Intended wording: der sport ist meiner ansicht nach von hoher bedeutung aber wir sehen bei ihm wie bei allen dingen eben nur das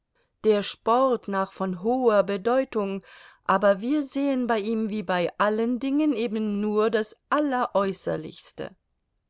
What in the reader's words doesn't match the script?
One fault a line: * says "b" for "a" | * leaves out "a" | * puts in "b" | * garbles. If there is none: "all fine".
* leaves out "ist meiner ansicht"